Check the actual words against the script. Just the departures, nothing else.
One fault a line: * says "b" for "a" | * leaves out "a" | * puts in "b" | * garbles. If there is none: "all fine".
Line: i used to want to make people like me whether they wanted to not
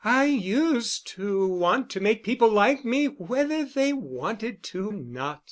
all fine